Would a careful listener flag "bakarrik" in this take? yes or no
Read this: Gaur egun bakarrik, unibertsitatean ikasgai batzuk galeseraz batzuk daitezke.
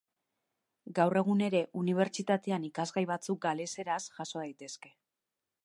yes